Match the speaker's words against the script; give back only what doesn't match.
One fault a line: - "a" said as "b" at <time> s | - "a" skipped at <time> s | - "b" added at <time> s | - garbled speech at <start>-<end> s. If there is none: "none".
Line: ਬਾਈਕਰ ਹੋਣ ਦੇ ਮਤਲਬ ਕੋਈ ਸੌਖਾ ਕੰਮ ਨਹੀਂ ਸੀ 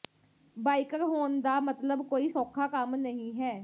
- "ਦੇ" said as "ਦਾ" at 1.4 s
- "ਸੀ" said as "ਹੈ" at 3.4 s